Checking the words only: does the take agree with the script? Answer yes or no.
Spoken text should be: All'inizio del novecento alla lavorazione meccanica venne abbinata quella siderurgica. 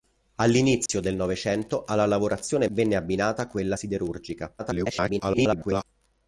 no